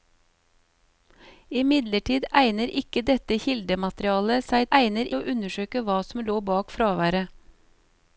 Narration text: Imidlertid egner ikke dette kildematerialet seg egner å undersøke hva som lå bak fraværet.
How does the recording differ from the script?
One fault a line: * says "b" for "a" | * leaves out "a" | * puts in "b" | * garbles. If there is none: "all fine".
all fine